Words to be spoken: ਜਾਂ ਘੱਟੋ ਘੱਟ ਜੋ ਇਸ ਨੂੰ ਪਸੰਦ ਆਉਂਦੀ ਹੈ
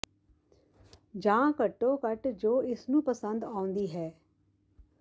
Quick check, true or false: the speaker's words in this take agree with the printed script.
true